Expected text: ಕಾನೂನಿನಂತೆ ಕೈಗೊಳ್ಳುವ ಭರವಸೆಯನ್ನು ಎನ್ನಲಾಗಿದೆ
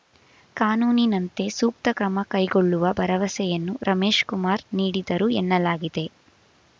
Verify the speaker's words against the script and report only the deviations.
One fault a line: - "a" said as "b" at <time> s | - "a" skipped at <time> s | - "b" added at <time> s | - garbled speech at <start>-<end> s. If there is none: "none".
- "ಸೂಕ್ತ ಕ್ರಮ" added at 1.5 s
- "ರಮೇಶ್‌ಕುಮಾರ್ ನೀಡಿದರು" added at 3.8 s